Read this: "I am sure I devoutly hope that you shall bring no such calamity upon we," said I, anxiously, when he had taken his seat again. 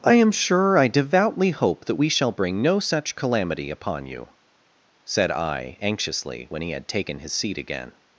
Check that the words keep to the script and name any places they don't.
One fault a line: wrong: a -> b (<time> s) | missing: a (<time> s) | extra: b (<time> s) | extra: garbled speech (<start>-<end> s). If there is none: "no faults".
wrong: you -> we (1.9 s)
wrong: we -> you (4.0 s)